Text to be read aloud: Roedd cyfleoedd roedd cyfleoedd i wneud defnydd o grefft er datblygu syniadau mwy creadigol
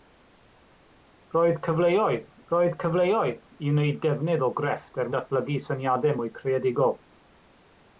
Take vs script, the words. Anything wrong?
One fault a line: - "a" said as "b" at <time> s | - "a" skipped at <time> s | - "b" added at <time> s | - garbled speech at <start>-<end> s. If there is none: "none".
none